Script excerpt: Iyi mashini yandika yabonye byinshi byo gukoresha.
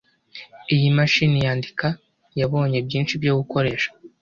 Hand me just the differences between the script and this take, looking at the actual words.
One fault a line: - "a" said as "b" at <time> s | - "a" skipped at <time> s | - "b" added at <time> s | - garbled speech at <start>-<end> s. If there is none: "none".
none